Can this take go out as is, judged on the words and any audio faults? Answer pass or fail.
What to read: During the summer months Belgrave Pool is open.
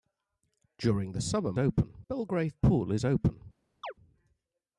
fail